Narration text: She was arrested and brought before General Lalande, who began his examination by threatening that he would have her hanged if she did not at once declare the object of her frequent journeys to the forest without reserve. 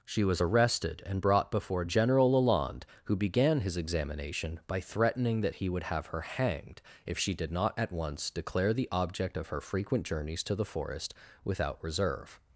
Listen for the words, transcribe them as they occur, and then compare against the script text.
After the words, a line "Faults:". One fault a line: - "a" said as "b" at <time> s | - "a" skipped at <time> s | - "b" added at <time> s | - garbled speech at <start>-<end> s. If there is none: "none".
She was arrested and brought before General Lalande, who began his examination by threatening that he would have her hanged if she did not at once declare the object of her frequent journeys to the forest without reserve.
Faults:
none